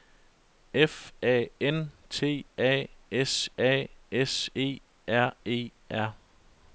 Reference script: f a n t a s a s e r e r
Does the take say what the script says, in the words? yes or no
yes